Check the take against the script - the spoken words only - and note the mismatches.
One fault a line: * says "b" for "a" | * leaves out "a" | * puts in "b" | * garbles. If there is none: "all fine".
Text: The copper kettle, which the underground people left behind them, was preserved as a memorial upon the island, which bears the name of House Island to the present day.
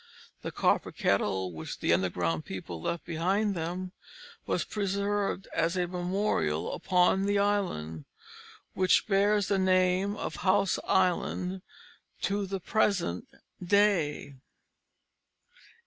all fine